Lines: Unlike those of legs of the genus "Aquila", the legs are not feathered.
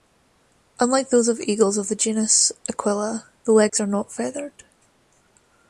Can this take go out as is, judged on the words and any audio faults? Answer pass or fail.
fail